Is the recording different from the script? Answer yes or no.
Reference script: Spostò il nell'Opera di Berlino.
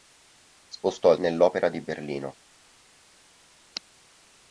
no